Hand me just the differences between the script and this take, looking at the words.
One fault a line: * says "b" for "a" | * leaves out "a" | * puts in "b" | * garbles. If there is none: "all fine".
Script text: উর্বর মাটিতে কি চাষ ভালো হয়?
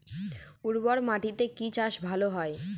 all fine